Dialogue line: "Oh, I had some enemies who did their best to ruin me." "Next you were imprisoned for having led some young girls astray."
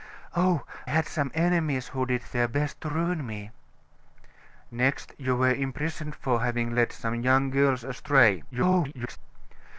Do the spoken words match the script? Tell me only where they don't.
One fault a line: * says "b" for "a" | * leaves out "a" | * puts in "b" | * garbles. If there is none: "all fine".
* leaves out "I"
* garbles